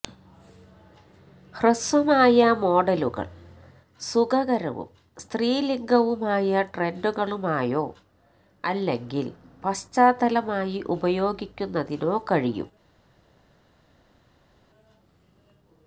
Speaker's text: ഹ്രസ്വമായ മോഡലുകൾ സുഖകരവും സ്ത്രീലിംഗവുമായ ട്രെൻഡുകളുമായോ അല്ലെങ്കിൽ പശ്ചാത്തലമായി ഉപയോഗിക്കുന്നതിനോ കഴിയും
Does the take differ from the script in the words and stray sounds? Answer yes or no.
no